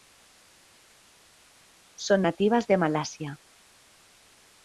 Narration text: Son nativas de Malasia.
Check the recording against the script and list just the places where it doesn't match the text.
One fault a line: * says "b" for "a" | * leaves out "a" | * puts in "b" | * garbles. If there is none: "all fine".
all fine